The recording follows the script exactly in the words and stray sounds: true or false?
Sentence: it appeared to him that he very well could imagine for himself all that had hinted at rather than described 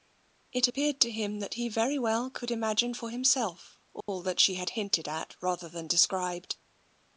false